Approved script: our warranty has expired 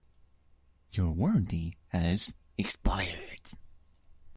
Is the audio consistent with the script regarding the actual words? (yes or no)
no